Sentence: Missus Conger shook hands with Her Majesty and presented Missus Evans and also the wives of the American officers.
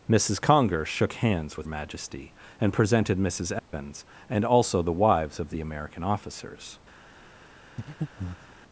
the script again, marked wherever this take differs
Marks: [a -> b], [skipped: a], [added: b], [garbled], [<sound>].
Missus Conger shook hands with [skipped: Her] Majesty and presented Missus Evans [dropout] and also the wives of the American officers. [breath]